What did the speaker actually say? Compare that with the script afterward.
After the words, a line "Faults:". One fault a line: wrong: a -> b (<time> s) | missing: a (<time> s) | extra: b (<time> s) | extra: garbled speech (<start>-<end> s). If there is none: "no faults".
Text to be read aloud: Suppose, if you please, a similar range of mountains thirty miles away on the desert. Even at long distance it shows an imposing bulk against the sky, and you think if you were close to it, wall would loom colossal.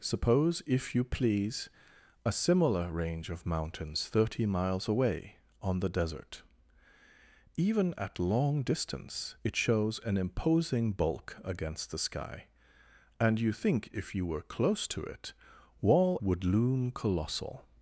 Suppose, if you please, a similar range of mountains thirty miles away on the desert. Even at long distance it shows an imposing bulk against the sky, and you think if you were close to it, wall would loom colossal.
Faults:
no faults